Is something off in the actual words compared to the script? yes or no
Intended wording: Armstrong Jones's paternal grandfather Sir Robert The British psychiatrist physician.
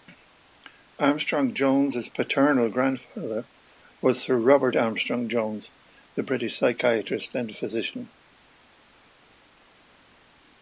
yes